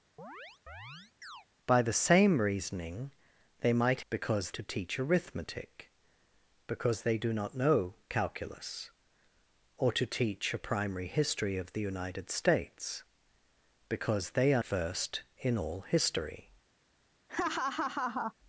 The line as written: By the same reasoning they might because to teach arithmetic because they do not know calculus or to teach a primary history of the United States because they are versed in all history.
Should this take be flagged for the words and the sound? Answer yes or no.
yes